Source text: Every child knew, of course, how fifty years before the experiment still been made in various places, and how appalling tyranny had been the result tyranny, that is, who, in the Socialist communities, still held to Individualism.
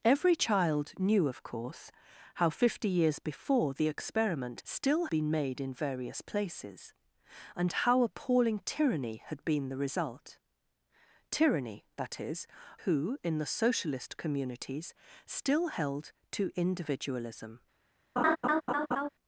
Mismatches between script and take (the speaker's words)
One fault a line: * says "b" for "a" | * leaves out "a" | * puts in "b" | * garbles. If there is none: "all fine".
all fine